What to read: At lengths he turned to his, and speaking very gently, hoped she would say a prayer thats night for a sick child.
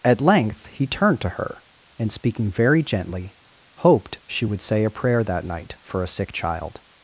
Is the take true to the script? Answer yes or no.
no